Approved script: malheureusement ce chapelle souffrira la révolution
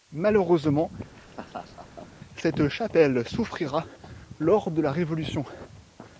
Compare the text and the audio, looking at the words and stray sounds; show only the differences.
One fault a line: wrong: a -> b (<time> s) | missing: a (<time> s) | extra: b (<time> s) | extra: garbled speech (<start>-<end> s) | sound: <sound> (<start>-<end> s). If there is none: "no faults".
sound: laugh (1.1-2.1 s)
wrong: ce -> cette (2.4 s)
extra: lors de (4.4 s)